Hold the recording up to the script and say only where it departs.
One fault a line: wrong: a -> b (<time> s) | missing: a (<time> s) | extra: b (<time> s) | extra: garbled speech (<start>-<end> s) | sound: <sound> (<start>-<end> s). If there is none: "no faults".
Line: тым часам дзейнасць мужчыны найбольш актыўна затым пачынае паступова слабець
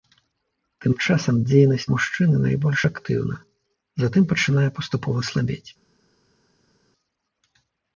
no faults